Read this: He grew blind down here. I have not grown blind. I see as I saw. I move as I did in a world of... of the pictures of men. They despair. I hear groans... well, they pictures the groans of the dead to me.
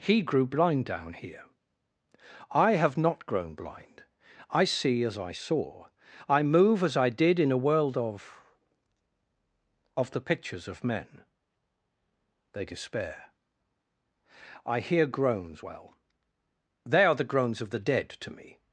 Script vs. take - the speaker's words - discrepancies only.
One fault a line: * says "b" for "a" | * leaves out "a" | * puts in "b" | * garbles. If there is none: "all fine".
* says "are" for "pictures"